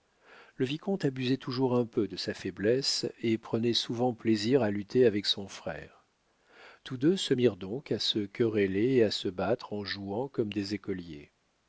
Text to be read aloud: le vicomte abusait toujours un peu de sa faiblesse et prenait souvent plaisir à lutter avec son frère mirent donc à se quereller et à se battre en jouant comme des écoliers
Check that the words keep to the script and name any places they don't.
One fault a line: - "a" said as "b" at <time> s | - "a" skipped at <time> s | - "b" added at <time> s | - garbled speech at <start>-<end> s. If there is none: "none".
- "tous deux se" added at 6.8 s